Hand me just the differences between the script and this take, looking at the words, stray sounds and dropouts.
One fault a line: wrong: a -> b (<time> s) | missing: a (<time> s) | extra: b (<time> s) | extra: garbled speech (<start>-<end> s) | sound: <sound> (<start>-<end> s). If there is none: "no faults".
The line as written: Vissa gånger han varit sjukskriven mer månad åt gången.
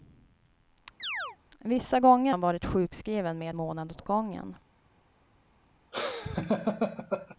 sound: chirp (1.0-1.4 s)
sound: laugh (5.9-7.4 s)